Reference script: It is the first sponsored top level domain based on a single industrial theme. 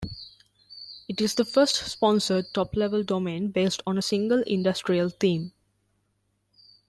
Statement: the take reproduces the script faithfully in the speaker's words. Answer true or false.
true